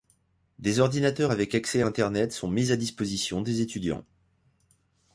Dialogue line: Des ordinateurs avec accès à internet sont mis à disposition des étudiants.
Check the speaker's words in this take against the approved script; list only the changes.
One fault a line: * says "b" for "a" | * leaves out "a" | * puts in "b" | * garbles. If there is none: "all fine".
all fine